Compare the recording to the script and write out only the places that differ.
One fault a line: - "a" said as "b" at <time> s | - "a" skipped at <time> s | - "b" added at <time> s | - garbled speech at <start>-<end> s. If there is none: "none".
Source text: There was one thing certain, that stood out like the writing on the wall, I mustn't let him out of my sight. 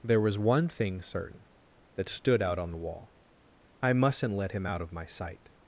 - "like the writing" skipped at 2.6 s